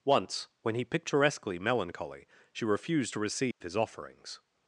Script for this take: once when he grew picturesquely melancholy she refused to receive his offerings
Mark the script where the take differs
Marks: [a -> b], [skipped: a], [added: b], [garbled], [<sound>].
once when he [skipped: grew] picturesquely melancholy she refused to receive [dropout] his offerings